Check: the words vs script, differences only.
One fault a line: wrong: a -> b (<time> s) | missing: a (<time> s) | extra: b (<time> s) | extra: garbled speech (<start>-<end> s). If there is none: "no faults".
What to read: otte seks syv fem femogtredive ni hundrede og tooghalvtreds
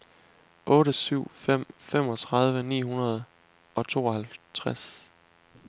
missing: seks (0.9 s)